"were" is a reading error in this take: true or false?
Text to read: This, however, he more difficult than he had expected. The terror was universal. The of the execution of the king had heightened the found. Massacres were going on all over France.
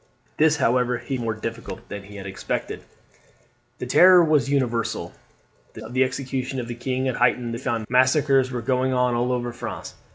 false